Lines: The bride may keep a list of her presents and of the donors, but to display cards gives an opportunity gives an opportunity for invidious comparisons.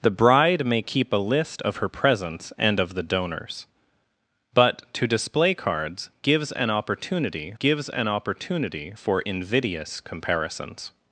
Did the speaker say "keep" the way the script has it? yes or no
yes